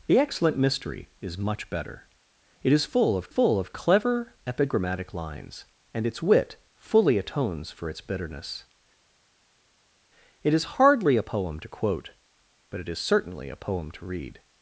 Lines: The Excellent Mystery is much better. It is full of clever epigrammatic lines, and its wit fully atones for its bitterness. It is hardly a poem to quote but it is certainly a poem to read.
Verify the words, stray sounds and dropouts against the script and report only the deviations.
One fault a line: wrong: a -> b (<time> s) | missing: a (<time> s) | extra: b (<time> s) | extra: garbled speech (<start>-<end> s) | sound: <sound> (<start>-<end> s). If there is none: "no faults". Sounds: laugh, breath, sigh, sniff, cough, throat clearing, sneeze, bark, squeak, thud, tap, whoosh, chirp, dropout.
extra: full of (3.3 s)